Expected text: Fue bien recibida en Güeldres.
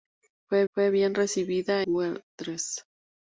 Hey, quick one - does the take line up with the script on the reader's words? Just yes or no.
no